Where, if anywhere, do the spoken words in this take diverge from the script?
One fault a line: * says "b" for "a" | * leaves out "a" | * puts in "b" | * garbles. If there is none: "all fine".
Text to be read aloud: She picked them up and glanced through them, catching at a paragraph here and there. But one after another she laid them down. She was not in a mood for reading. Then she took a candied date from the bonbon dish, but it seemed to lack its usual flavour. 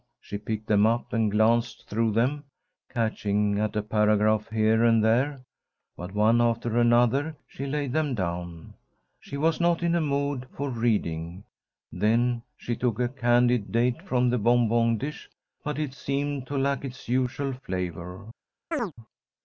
all fine